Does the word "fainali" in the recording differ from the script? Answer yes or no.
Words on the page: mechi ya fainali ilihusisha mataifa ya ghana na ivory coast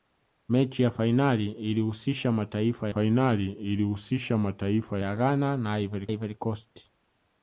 no